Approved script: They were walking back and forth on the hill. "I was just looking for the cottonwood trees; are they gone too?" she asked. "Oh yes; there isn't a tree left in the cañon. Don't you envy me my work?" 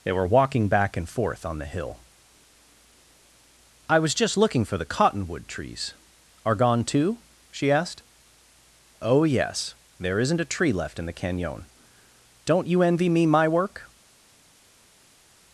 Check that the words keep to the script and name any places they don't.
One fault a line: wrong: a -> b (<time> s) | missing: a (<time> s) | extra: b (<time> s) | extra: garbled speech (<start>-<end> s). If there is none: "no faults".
missing: they (6.5 s)